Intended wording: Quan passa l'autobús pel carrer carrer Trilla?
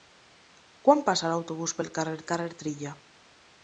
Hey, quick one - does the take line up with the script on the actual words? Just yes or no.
yes